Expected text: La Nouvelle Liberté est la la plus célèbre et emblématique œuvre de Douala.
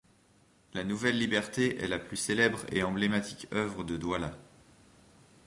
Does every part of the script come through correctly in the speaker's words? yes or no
no